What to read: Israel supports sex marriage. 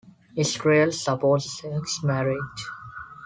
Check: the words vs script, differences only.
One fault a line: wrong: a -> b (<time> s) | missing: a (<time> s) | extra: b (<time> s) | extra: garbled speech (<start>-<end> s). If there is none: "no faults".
no faults